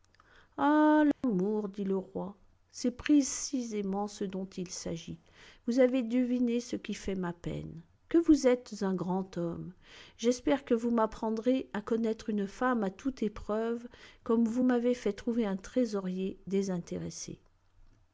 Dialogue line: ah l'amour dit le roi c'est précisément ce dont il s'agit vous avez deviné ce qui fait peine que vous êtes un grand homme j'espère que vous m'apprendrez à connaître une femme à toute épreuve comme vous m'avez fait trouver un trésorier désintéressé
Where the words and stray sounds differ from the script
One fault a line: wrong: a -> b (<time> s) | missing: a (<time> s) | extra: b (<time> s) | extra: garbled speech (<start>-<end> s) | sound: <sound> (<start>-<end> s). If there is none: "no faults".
sound: dropout (1.1-1.2 s)
extra: ma (7.1 s)